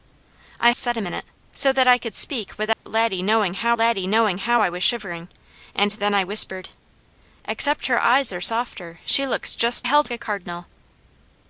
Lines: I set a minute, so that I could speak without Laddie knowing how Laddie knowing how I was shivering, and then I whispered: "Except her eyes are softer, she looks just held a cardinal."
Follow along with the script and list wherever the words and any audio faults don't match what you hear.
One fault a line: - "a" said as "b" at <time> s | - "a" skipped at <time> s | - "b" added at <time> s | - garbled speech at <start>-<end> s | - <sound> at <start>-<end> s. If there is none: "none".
- dropout at 2.7-2.9 s